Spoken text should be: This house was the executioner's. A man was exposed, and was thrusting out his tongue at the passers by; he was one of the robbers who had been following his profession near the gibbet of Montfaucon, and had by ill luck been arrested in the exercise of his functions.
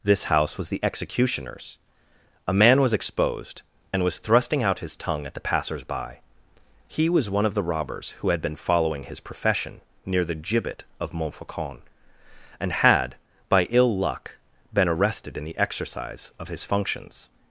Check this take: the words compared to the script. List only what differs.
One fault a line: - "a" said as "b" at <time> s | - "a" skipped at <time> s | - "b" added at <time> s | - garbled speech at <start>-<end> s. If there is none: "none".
none